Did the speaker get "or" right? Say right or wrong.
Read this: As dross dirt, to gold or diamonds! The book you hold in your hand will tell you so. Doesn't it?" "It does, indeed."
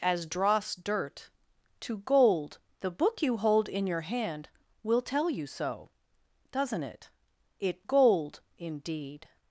wrong